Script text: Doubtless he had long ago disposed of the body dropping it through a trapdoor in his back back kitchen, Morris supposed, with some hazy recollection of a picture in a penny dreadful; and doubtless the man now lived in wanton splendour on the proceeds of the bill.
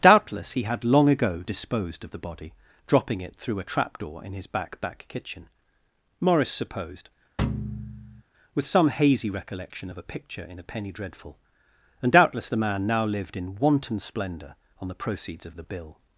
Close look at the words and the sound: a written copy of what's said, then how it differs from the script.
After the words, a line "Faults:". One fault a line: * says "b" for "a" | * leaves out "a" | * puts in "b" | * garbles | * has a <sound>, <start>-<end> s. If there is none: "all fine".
Doubtless he had long ago disposed of the body dropping it through a trapdoor in his back back kitchen, Morris supposed, with some hazy recollection of a picture in a penny dreadful; and doubtless the man now lived in wanton splendour on the proceeds of the bill.
Faults:
* has a thud, 7.4-8.2 s